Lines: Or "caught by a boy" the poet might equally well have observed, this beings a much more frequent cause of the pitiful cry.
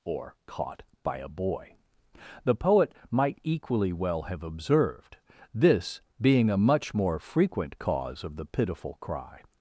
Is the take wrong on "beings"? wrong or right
wrong